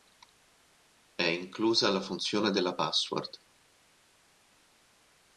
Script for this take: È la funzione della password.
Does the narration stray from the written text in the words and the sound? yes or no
yes